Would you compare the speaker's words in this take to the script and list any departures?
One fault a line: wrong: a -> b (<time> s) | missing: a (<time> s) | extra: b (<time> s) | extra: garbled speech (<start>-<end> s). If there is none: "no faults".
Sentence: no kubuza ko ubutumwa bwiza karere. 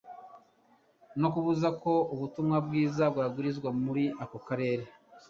extra: bwabwirizwa muri ako (3.1 s)